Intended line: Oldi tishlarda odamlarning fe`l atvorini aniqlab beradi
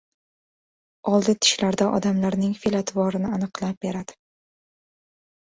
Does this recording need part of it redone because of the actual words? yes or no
no